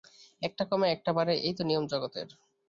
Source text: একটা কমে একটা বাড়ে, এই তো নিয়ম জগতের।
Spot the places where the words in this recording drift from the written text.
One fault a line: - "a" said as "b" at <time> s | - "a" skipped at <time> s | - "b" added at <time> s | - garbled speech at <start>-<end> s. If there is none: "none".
none